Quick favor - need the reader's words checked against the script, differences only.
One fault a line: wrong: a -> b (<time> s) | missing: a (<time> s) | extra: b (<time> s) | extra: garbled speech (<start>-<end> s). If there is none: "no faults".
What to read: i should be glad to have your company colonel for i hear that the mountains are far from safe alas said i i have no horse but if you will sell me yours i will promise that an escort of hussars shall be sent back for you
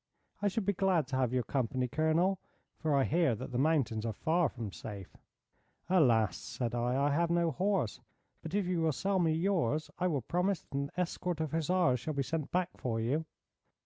no faults